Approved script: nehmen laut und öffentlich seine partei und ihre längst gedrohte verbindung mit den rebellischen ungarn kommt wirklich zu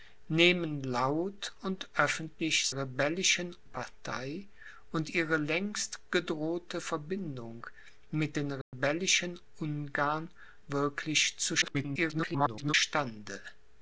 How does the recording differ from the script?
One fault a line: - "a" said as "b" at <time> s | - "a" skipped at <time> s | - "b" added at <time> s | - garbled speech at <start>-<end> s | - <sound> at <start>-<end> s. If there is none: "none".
- "seine" said as "rebellischen" at 2.7 s
- dropout at 8.6-8.7 s
- "kommt" skipped at 10.3 s
- garbled speech at 11.6-12.7 s